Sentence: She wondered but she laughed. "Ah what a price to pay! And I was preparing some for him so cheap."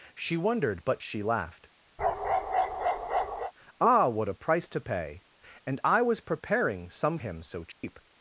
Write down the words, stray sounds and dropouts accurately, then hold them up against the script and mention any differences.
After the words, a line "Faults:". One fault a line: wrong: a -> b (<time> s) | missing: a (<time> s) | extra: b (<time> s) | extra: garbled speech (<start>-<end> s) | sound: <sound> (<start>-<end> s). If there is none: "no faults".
She wondered but she laughed. "Ah what a price to pay! And I was preparing some him so cheap."
Faults:
sound: bark (2.0-3.5 s)
missing: for (7.2 s)
sound: dropout (7.7-7.8 s)